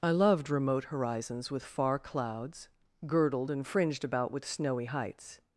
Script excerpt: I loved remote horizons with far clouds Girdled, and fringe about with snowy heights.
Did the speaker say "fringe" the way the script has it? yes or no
no